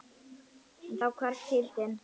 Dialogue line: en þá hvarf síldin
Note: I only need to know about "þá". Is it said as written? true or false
true